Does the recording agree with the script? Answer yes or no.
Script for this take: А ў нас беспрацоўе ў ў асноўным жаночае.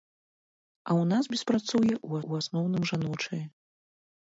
yes